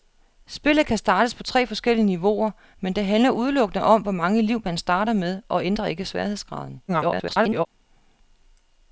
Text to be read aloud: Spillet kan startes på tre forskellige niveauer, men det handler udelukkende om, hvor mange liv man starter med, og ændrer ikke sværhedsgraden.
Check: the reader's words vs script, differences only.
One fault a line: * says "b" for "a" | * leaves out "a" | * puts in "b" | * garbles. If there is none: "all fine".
* garbles